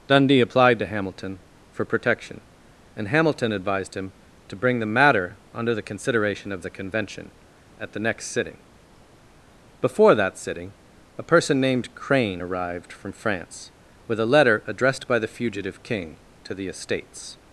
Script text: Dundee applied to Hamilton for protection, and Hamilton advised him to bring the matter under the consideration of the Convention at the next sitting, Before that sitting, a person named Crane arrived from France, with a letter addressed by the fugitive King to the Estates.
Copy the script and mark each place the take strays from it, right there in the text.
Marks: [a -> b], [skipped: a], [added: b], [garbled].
Dundee applied to Hamilton for protection, and Hamilton advised him to bring the matter under the consideration of the Convention at the next sitting, Before that sitting, a person named Crane arrived from France, with a letter addressed by the fugitive King to the Estates.